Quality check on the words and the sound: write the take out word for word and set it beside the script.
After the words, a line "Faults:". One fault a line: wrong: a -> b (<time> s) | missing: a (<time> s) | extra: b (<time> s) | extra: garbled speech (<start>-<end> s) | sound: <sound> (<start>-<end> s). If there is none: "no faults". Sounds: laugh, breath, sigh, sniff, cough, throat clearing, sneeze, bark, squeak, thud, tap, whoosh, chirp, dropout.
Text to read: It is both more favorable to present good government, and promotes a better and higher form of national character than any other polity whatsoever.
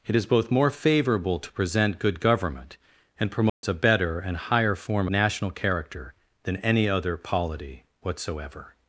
It is both more favorable to present good government, and promotes a better and higher form national character than any other polity whatsoever.
Faults:
sound: dropout (3.5-3.6 s)
missing: of (5.1 s)